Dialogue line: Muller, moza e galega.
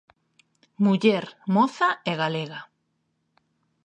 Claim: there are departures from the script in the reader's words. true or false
false